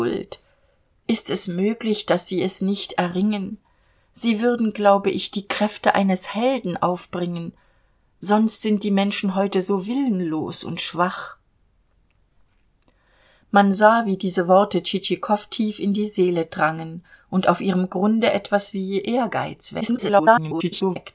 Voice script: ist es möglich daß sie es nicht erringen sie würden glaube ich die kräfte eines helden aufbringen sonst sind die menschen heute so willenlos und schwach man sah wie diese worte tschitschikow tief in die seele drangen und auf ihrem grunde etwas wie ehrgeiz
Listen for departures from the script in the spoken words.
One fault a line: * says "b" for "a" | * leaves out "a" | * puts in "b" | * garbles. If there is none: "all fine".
* garbles